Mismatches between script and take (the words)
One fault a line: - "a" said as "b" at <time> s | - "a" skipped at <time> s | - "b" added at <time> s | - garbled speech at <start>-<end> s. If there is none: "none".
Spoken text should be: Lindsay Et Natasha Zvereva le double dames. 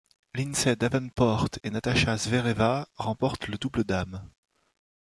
- "Davenport" added at 0.8 s
- "remportent" added at 3.0 s